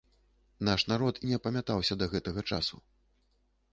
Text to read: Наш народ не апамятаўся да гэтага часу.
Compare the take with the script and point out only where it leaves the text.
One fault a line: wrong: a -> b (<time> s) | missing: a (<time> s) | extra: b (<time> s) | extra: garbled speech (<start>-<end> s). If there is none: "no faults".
no faults